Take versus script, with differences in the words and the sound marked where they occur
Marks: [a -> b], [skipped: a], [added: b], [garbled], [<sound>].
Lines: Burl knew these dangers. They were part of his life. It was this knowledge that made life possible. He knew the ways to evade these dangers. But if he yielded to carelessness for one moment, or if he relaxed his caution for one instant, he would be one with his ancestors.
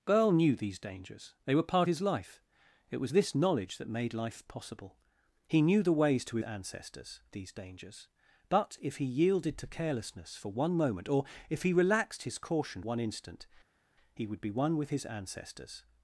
Burl knew these dangers. They were part [skipped: of] his life. It was this knowledge that made life possible. He knew the ways to [evade -> ancestors] these dangers. But if he yielded to carelessness for one moment, or if he relaxed his caution [skipped: for] one instant, he would be one with his ancestors.